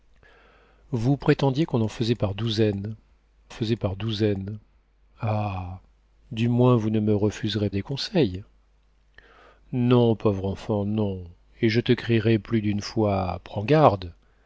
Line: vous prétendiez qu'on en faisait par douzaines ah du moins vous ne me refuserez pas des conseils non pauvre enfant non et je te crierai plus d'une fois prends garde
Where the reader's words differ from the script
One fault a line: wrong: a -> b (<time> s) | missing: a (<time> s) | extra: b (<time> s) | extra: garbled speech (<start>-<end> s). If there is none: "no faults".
extra: faisait par douzaines (3.5 s)
missing: pas (7.7 s)